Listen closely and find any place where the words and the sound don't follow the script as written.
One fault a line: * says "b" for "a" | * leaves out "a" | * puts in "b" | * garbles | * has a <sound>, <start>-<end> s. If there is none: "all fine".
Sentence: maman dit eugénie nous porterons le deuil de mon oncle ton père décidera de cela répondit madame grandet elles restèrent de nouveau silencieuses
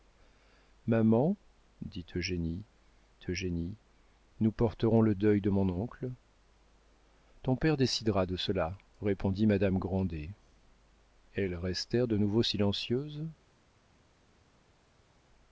* puts in "eugénie"